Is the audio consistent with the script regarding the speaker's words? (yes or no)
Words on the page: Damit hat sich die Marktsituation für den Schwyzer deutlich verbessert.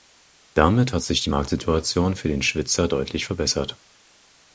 yes